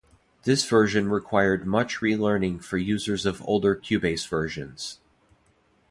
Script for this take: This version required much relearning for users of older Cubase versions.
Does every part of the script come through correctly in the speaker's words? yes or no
yes